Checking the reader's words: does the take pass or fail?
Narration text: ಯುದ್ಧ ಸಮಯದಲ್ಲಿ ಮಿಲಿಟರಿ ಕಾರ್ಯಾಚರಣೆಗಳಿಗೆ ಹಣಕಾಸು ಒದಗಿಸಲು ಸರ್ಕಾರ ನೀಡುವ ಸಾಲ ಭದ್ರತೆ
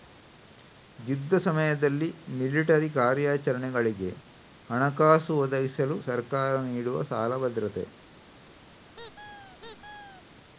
pass